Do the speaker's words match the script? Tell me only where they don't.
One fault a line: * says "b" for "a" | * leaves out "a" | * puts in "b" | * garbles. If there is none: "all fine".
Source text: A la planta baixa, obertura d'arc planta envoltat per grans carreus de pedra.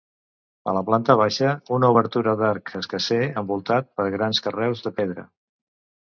* puts in "una"
* says "escarser" for "planta"